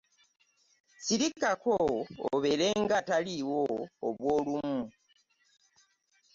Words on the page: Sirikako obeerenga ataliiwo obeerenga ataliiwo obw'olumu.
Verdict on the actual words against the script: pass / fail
fail